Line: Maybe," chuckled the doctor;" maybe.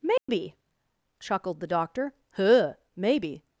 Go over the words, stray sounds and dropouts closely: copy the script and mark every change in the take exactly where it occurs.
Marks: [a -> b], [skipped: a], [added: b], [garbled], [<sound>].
Maybe," [dropout] chuckled the doctor;" [added: huh] maybe.